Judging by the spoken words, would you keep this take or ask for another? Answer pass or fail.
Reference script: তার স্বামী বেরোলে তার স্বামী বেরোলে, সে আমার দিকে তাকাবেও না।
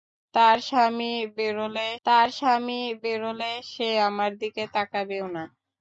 pass